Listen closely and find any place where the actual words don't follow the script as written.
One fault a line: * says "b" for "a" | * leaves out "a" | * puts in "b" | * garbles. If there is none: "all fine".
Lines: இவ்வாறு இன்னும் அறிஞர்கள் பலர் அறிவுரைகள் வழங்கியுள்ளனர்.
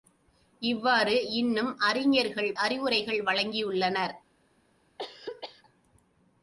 * leaves out "பலர்"